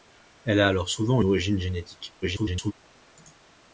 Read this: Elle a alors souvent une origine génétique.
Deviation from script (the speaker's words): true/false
true